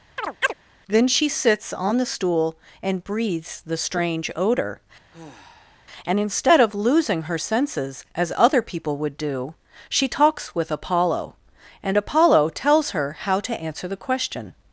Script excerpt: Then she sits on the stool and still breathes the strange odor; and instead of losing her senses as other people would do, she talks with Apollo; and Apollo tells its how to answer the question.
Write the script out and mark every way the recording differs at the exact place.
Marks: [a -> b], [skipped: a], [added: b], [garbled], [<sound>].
[chirp] Then she sits on the stool and [skipped: still] breathes the strange odor; [sigh] and instead of losing her senses as other people would do, she talks with Apollo; and Apollo tells [its -> her] how to answer the question.